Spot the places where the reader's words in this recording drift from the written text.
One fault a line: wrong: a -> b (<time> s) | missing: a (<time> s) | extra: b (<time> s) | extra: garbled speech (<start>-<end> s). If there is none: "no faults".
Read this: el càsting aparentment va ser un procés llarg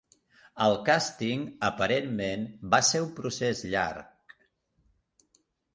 no faults